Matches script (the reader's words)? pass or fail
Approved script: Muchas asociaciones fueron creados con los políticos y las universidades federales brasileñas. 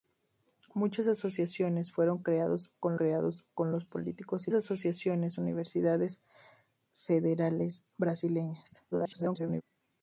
fail